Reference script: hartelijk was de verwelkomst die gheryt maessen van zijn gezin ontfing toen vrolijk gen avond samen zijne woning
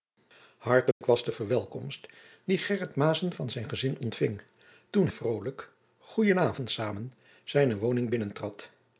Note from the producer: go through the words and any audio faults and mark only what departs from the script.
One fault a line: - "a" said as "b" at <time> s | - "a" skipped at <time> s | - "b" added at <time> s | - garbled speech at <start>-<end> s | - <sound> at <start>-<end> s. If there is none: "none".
- dropout at 0.9-1.0 s